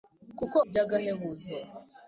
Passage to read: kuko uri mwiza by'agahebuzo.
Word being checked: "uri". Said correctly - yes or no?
no